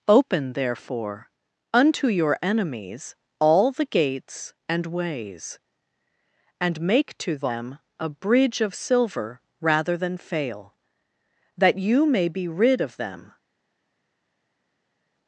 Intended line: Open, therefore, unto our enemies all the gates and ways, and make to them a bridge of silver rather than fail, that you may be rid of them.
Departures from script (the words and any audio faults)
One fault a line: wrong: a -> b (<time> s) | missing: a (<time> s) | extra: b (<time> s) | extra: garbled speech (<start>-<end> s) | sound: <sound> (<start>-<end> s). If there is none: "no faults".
wrong: our -> your (2.1 s)